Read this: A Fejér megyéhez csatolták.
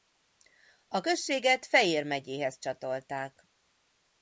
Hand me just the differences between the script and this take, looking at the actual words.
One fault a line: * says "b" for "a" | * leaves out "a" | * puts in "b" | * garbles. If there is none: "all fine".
* puts in "községet"